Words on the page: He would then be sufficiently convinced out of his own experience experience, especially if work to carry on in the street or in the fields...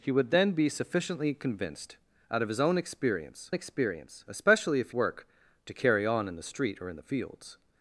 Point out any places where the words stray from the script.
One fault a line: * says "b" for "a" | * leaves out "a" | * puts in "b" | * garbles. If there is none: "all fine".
all fine